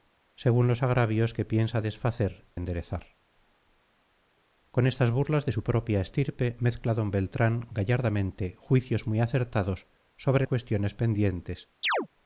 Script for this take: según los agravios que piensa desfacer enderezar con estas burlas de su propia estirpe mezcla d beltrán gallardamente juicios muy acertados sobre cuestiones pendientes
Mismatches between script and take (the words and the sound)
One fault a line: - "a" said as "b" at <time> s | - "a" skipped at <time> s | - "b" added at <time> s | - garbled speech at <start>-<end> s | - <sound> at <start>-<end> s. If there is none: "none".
- chirp at 11.8-12.1 s